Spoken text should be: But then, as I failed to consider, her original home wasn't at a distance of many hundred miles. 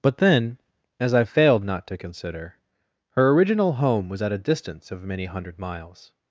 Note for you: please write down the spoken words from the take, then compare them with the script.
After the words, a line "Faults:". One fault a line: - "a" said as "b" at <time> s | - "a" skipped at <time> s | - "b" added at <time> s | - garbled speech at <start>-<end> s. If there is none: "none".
But then, as I failed not to consider, her original home was at a distance of many hundred miles.
Faults:
- "not" added at 1.6 s
- "wasn't" said as "was" at 4.1 s